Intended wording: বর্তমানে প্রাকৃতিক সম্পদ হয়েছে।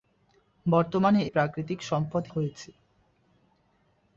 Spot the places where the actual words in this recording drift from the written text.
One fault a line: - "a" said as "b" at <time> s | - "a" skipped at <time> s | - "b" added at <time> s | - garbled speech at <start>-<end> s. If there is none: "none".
none